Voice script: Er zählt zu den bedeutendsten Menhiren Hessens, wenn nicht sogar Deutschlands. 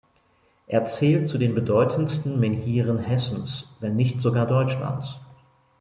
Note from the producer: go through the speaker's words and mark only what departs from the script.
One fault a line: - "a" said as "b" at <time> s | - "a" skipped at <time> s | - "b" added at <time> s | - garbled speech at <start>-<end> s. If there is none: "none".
none